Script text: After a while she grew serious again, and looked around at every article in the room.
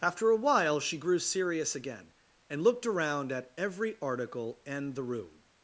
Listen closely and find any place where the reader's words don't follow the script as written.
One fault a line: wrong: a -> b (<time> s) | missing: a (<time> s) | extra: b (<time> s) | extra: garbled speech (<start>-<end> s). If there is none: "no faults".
wrong: in -> and (4.7 s)